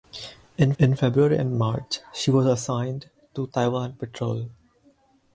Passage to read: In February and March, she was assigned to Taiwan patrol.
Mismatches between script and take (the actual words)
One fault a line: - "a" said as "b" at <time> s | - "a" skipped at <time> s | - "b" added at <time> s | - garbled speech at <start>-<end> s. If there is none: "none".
- "in" added at 0.8 s